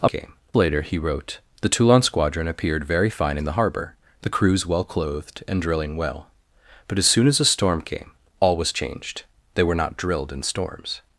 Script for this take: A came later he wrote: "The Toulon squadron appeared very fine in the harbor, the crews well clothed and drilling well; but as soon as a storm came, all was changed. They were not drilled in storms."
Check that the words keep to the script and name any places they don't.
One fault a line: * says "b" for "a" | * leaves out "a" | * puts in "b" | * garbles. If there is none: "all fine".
all fine